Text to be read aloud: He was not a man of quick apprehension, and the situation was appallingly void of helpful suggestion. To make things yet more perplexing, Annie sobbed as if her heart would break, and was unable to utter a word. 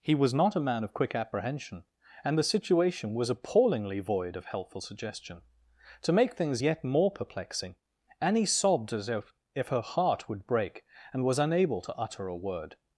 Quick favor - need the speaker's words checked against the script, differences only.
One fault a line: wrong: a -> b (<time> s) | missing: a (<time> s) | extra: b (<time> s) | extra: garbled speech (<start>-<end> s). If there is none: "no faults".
extra: if (9.5 s)